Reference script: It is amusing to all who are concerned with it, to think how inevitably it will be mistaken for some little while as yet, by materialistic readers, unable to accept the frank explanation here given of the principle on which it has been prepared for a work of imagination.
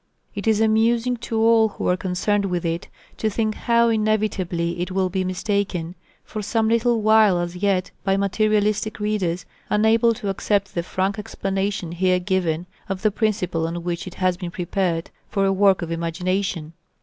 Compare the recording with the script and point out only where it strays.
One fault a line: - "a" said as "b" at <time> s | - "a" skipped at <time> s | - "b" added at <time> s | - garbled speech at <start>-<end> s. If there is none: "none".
none